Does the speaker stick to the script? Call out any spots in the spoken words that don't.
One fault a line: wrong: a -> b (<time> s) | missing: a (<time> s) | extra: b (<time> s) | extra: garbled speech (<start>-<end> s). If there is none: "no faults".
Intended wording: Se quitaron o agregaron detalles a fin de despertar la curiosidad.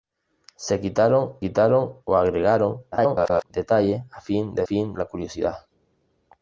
extra: quitaron (1.4 s)
extra: garbled speech (2.9-3.4 s)
wrong: despertar -> fin (4.6 s)